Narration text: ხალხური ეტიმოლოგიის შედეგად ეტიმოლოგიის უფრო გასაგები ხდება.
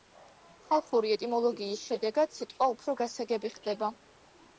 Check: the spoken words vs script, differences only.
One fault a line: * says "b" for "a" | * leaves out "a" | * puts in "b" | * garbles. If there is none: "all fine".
* says "სიტყვა" for "ეტიმოლოგიის"